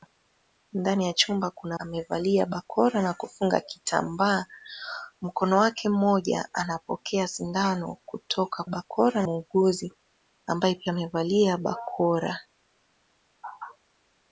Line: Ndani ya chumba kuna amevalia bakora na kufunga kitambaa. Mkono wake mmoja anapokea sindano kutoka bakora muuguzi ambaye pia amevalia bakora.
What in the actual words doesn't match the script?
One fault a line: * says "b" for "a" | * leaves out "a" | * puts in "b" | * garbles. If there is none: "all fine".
all fine